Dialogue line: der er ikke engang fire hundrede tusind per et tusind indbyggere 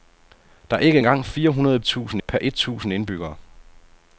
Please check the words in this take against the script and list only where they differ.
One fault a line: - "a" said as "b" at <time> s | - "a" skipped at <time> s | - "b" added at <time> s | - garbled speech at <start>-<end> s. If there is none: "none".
none